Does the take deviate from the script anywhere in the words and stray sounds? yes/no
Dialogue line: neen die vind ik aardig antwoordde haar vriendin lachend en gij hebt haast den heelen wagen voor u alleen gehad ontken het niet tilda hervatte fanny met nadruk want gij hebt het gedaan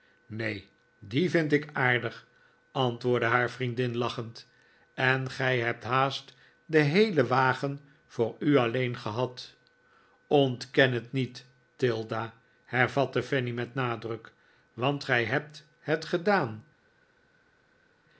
no